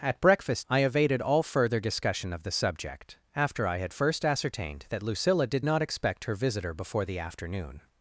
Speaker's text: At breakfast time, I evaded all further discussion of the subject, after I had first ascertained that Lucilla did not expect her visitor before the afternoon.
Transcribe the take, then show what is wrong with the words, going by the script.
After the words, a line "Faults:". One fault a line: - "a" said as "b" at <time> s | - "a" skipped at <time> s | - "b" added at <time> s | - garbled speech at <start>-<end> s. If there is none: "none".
At breakfast I evaded all further discussion of the subject, after I had first ascertained that Lucilla did not expect her visitor before the afternoon.
Faults:
- "time" skipped at 0.7 s